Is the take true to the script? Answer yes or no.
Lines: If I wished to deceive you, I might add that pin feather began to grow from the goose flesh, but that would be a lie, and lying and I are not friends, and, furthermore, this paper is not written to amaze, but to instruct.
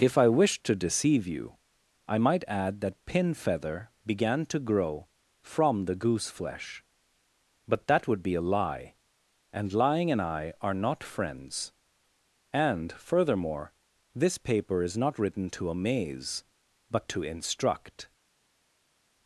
yes